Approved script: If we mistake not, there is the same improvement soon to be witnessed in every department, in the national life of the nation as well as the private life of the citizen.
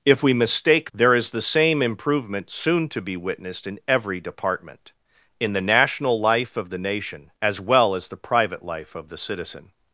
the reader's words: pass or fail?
fail